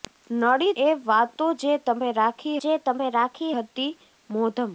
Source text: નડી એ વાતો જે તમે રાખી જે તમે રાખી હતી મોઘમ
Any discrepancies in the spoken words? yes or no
no